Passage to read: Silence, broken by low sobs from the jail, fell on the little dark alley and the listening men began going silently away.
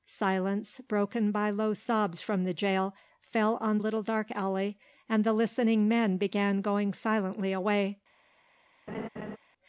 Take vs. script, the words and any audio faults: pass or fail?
fail